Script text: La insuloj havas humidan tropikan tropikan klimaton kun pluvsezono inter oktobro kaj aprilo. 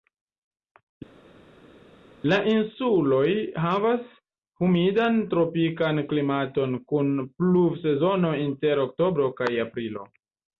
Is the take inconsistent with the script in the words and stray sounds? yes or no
yes